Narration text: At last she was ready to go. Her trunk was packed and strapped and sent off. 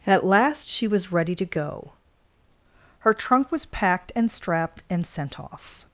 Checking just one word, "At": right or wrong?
right